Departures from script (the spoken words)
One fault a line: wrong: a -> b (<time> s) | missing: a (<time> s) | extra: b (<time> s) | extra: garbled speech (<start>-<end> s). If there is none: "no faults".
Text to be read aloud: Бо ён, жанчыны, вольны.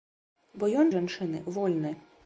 no faults